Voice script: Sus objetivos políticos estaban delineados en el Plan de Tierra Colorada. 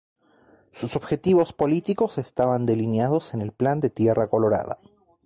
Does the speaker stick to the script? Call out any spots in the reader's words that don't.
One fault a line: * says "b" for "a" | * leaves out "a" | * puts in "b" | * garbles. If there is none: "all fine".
all fine